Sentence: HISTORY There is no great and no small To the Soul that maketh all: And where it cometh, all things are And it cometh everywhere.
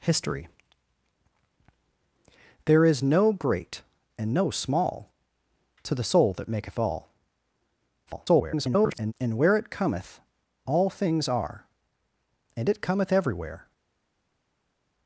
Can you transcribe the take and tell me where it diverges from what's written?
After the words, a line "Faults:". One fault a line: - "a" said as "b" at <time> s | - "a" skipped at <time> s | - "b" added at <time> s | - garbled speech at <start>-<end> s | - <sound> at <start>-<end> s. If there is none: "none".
HISTORY There is no great and no small To the Soul that maketh all: [garbled] And where it cometh, all things are And it cometh everywhere.
Faults:
- garbled speech at 8.1-9.1 s